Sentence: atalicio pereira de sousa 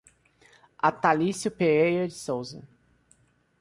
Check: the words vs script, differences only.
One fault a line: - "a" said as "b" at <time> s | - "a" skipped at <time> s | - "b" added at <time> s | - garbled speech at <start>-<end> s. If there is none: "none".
none